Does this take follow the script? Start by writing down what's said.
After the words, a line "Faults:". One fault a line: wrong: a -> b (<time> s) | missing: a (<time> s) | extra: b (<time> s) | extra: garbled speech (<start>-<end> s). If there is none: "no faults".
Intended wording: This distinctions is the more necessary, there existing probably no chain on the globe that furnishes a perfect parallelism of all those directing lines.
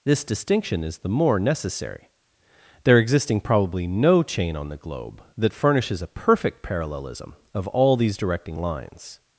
This distinction is the more necessary, there existing probably no chain on the globe that furnishes a perfect parallelism of all these directing lines.
Faults:
wrong: distinctions -> distinction (0.2 s)
wrong: those -> these (8.0 s)